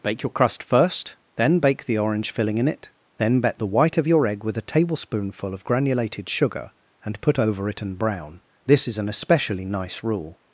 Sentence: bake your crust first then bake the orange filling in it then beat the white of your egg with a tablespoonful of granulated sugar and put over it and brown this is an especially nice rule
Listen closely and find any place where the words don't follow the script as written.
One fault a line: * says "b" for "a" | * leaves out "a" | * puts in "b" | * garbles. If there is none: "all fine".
* says "bet" for "beat"